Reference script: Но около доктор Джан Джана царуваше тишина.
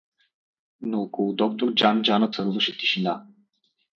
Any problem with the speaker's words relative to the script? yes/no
no